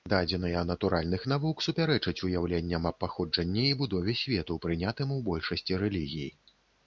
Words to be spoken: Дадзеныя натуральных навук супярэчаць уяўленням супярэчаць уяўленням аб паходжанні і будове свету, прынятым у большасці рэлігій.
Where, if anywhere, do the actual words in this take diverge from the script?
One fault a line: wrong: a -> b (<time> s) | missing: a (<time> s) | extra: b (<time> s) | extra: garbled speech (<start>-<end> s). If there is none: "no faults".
missing: супярэчаць уяўленням (2.9 s)